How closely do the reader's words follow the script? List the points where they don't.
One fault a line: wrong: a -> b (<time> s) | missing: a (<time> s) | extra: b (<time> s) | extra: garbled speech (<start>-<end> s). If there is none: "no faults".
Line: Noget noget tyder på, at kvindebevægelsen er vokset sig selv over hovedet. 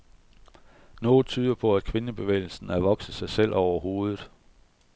missing: noget (1.2 s)